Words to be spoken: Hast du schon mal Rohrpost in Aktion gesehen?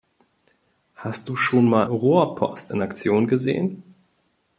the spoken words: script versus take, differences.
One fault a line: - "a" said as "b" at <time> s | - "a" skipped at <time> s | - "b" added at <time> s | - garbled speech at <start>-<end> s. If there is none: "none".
none